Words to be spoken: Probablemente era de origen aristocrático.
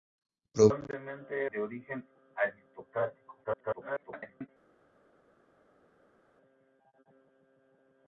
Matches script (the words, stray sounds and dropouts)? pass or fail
fail